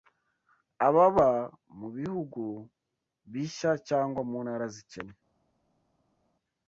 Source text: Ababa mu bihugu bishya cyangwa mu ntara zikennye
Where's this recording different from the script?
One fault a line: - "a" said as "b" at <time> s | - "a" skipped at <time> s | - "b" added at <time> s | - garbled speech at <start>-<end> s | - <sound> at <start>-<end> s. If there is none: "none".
none